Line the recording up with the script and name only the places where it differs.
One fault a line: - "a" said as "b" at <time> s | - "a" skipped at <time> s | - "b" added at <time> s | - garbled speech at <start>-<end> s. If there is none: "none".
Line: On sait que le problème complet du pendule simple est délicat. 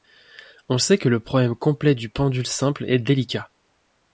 none